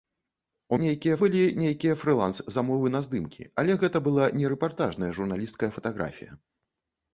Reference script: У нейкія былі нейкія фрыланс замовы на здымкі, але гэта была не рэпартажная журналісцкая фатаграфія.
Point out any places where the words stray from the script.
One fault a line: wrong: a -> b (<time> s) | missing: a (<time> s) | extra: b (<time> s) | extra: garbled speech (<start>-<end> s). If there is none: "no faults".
no faults